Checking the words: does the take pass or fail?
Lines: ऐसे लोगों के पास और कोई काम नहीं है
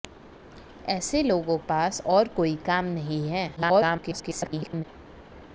fail